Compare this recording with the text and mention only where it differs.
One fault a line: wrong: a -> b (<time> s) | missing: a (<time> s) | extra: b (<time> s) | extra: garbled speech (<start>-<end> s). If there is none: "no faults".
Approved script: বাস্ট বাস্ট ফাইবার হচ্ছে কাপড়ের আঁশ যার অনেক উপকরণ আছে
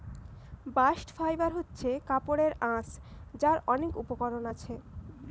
missing: বাস্ট (1.1 s)